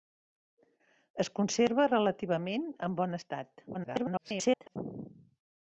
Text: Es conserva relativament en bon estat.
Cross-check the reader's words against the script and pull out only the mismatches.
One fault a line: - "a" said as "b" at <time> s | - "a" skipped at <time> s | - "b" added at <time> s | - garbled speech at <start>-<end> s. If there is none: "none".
- garbled speech at 3.7-4.8 s